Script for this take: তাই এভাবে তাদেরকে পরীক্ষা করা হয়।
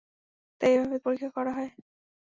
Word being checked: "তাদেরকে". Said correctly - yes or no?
no